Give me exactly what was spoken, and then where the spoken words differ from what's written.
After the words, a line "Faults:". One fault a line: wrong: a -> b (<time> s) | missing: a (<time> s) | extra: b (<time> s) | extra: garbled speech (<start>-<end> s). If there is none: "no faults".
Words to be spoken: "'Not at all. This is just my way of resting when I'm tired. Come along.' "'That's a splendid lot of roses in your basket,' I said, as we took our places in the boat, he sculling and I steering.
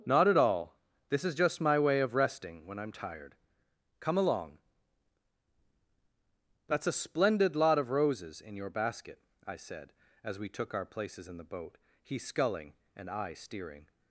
"'Not at all. This is just my way of resting when I'm tired. Come along.' "'That's a splendid lot of roses in your basket,' I said, as we took our places in the boat, he sculling and I steering.
Faults:
no faults